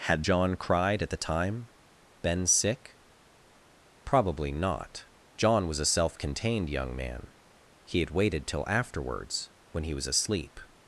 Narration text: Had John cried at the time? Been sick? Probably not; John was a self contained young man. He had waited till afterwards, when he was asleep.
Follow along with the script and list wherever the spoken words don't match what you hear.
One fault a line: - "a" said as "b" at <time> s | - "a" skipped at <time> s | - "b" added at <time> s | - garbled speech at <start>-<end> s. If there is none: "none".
none